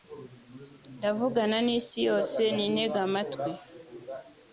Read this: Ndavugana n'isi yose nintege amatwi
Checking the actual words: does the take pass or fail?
pass